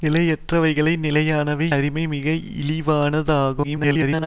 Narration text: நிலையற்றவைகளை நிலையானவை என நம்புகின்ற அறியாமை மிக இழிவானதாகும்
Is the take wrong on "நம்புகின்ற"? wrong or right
wrong